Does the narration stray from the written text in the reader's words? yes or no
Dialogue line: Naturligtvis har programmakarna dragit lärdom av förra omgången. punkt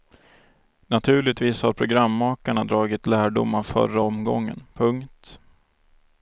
no